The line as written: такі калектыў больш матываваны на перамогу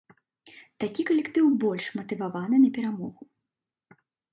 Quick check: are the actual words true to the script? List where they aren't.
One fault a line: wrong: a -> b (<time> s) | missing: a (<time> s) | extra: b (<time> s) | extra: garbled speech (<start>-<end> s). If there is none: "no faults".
no faults